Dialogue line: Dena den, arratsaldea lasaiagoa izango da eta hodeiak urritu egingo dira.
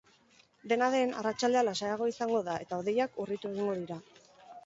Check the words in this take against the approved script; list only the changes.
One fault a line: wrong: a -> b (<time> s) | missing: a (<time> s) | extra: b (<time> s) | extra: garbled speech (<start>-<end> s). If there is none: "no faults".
no faults